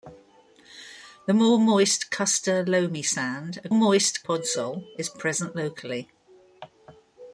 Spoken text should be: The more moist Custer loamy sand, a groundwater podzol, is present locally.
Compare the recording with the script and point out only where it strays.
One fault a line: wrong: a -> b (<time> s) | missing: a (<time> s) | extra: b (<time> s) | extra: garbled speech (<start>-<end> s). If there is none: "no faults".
wrong: groundwater -> moist (3.7 s)